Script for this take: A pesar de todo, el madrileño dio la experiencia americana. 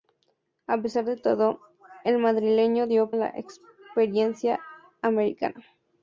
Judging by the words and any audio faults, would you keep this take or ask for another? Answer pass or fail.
pass